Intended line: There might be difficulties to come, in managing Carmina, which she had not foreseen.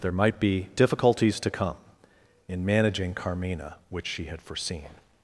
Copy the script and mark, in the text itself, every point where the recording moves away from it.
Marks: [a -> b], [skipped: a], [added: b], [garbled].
There might be difficulties to come, in managing Carmina, which she had [skipped: not] foreseen.